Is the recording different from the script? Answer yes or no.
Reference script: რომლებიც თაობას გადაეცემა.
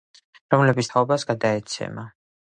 no